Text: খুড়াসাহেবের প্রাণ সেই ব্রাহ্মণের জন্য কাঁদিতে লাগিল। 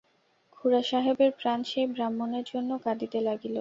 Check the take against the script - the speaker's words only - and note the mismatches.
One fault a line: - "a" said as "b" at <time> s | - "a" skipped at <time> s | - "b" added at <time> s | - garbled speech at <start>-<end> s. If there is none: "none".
none